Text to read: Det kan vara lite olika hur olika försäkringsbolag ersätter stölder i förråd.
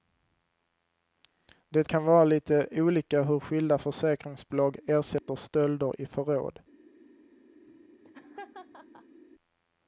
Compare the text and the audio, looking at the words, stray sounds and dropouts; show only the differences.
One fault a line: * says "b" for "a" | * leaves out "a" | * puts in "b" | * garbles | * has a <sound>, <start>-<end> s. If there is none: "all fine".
* says "skilda" for "olika"
* has a dropout, 5.2-5.3 s
* has a laugh, 7.6-9.2 s